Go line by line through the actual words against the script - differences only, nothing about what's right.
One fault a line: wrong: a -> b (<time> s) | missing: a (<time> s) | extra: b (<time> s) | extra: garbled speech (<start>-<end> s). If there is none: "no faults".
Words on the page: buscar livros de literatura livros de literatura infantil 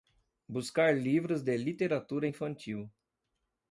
missing: livros de literatura (2.3 s)